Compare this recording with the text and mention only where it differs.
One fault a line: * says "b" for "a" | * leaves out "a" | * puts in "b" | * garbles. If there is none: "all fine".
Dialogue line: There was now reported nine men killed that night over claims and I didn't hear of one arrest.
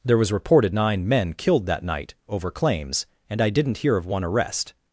* leaves out "now"